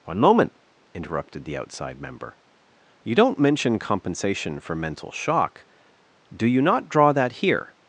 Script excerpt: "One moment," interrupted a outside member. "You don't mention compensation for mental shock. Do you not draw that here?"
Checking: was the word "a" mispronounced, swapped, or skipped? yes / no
yes